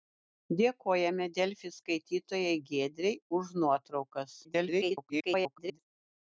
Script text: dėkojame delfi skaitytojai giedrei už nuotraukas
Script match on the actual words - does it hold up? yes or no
no